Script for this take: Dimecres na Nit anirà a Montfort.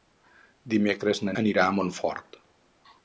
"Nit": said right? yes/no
no